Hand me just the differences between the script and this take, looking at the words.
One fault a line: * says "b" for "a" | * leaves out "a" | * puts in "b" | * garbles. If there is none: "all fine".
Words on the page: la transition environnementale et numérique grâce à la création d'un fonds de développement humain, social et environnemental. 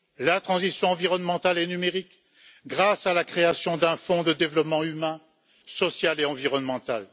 all fine